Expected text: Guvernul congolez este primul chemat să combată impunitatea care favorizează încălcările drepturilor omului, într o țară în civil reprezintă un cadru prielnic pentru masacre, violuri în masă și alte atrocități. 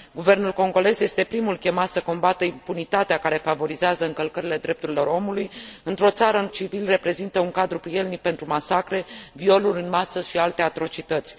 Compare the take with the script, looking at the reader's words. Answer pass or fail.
pass